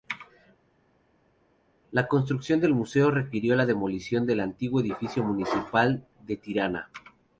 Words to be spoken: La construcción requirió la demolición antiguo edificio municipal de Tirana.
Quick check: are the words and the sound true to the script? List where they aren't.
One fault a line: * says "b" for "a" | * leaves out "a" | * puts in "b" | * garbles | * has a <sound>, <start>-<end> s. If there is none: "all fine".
* puts in "del museo"
* puts in "del"